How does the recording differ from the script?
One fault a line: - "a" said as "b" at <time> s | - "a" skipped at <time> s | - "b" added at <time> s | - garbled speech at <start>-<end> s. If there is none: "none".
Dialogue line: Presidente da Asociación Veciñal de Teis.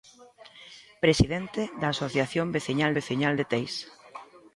- "Veciñal" added at 3.0 s